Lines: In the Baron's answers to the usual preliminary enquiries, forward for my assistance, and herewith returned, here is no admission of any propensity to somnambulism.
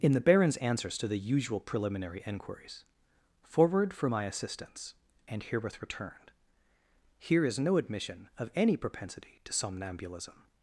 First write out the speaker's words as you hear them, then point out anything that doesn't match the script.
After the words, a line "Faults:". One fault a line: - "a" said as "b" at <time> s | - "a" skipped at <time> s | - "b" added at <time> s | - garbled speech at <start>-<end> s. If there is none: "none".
In the Baron's answers to the usual preliminary enquiries, forward for my assistance, and herewith returned, here is no admission of any propensity to somnambulism.
Faults:
none